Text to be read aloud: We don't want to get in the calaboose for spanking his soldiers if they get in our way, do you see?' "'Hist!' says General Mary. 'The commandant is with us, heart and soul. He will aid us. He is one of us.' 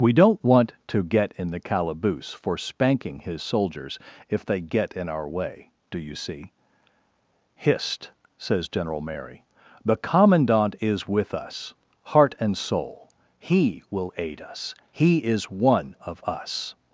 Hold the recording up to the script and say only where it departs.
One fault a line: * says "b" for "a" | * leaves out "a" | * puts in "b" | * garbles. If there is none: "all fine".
all fine